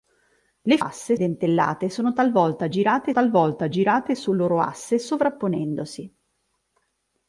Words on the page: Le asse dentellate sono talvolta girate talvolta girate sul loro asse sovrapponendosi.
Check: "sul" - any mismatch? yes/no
no